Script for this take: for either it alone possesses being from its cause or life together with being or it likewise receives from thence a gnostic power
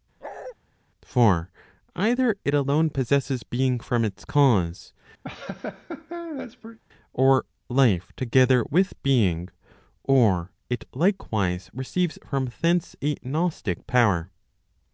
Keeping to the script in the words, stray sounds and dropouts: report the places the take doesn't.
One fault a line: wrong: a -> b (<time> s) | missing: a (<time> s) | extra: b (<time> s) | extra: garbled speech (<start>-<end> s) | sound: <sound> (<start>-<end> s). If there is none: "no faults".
sound: bark (0.2-0.6 s)
sound: laugh (5.2-6.8 s)